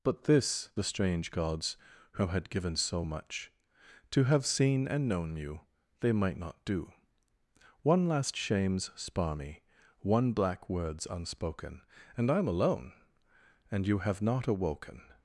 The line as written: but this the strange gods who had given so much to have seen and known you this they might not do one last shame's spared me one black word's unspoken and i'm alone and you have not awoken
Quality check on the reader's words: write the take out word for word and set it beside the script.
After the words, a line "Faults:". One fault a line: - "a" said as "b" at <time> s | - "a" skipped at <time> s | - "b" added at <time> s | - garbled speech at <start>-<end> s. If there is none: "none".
but this the strange gods who had given so much to have seen and known you they might not do one last shame's spar me one black word's unspoken and i'm alone and you have not awoken
Faults:
- "this" skipped at 5.6 s
- "spared" said as "spar" at 9.0 s